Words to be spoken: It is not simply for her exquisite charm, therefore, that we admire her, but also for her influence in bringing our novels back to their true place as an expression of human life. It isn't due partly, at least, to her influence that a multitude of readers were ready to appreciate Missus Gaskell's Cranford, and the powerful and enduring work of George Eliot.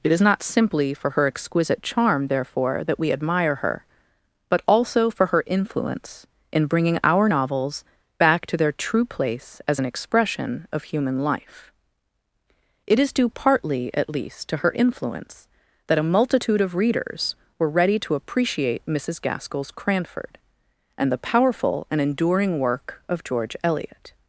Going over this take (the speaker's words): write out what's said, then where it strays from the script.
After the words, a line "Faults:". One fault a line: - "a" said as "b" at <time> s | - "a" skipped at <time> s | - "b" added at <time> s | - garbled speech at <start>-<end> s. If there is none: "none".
It is not simply for her exquisite charm, therefore, that we admire her, but also for her influence in bringing our novels back to their true place as an expression of human life. It is due partly, at least, to her influence that a multitude of readers were ready to appreciate Missus Gaskell's Cranford, and the powerful and enduring work of George Eliot.
Faults:
- "isn't" said as "is" at 13.0 s